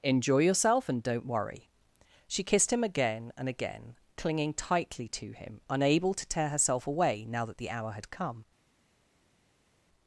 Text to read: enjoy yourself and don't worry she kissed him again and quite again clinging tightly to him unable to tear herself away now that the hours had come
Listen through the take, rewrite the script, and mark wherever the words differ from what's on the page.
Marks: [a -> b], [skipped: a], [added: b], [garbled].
enjoy yourself and don't worry she kissed him again and [skipped: quite] again clinging tightly to him unable to tear herself away now that the [hours -> hour] had come